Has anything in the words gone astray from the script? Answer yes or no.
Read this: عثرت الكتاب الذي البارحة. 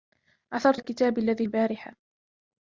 no